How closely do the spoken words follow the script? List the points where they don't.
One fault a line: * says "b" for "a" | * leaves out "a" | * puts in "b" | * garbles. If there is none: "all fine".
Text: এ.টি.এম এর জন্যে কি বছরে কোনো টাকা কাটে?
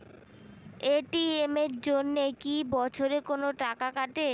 all fine